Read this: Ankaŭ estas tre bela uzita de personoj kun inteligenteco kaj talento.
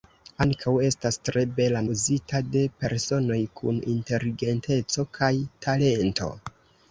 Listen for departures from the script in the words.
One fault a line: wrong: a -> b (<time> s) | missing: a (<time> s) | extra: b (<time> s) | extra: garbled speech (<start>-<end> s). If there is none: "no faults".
no faults